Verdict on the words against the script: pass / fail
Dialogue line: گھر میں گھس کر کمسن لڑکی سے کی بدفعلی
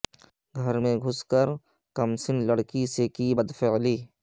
pass